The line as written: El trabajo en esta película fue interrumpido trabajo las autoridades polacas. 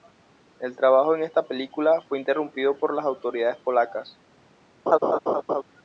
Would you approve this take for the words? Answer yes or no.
no